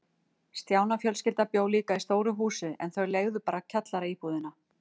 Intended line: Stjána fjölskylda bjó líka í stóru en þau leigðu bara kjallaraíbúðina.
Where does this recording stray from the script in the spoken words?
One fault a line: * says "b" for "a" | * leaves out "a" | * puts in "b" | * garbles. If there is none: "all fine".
* puts in "húsi"